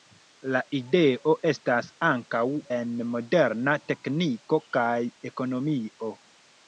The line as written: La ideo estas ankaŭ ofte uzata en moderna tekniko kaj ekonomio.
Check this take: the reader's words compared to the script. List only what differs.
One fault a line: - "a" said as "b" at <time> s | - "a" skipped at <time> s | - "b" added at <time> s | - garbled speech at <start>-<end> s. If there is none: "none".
- "ofte uzata" skipped at 2.4 s